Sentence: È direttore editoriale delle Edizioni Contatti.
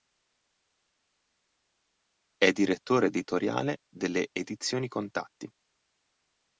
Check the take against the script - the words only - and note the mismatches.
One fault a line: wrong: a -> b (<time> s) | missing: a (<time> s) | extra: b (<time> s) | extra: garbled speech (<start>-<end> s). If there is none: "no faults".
no faults